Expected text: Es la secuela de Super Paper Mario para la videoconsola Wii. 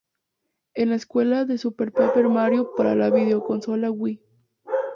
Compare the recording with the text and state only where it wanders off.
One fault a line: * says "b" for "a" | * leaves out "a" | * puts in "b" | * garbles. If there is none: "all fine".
all fine